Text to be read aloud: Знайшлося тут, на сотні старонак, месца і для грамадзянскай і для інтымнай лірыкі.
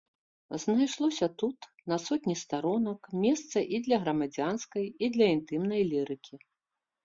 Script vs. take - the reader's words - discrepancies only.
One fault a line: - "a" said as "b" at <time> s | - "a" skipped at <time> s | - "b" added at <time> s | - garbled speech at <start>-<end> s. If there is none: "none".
none